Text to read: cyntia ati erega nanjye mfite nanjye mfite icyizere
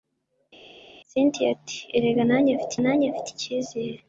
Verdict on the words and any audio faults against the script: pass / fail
pass